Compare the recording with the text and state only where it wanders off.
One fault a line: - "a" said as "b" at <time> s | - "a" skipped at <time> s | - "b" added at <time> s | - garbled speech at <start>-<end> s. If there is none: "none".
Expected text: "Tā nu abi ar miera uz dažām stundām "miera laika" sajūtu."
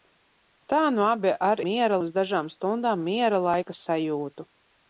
none